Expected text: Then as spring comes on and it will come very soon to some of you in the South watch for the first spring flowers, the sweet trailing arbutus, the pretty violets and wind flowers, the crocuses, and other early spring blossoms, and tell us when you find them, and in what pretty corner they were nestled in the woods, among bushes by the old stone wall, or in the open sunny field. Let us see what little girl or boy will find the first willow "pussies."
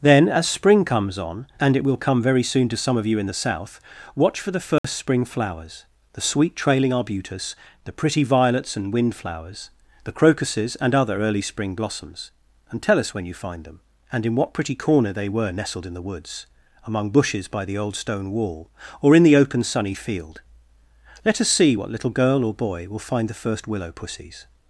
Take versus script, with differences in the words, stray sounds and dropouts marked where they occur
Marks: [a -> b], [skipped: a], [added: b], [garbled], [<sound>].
Then as spring comes on and it will come very soon to some of you in the South watch for the first [dropout] spring flowers, the sweet trailing arbutus, the pretty violets and wind flowers, the crocuses, and other early spring blossoms, and tell us when you find them, and in what pretty corner they were nestled in the woods, among bushes by the old stone wall, or in the open sunny field. Let us see what little girl or boy will find the first willow "pussies."